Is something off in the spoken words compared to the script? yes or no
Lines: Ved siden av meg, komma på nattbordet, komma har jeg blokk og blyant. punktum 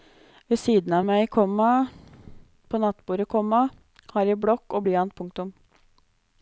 no